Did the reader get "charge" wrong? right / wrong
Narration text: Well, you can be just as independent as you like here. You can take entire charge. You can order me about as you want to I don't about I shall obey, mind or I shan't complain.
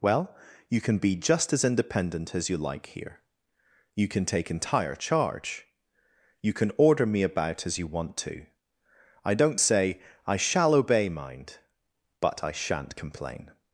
right